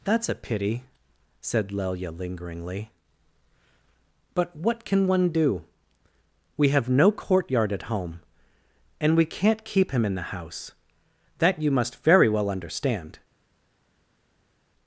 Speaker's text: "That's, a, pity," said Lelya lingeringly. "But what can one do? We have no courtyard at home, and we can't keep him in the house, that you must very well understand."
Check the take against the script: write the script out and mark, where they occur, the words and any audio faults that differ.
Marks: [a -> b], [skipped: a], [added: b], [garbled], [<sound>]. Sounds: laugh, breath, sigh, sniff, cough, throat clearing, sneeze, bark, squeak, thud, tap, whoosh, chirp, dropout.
"That's, a, pity," said Lelya lingeringly. "But what can one do? We have no courtyard at home, and we can't keep him in the house, that you must very well understand."